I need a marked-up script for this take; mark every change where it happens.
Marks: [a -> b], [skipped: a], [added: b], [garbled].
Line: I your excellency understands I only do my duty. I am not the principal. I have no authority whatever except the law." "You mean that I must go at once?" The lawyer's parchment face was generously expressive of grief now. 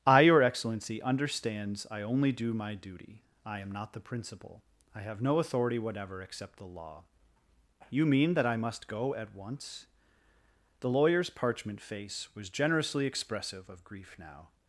I your excellency understands I only do my duty. I am not the principal. I have no authority whatever except the law." "You mean that I must go at once?" The lawyer's parchment face was generously expressive of grief now.